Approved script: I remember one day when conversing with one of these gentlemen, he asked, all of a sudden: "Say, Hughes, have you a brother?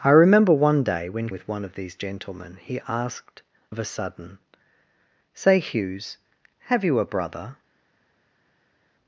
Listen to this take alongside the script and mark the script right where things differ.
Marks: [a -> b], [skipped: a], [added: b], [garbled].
I remember one day when [skipped: conversing] with one of these gentlemen, he asked, [skipped: all] of a sudden: "Say, Hughes, have you a brother?